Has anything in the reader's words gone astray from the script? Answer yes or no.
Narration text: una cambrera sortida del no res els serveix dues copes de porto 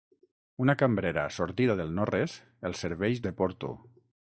yes